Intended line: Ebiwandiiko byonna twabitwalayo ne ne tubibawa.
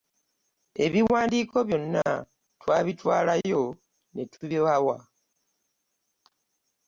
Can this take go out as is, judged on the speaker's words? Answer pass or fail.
fail